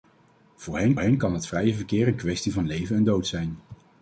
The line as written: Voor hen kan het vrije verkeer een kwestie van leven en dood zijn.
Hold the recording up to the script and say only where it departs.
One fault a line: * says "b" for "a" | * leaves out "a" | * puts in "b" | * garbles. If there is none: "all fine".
* puts in "hen"